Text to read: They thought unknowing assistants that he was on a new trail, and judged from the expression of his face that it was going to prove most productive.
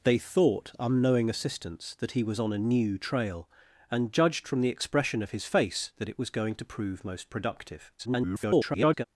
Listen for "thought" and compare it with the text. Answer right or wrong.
right